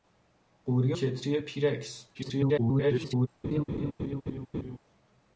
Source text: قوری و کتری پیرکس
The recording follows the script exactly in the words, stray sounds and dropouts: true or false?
false